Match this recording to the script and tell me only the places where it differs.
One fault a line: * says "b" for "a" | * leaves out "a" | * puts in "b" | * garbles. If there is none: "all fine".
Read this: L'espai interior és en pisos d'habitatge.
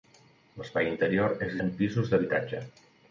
all fine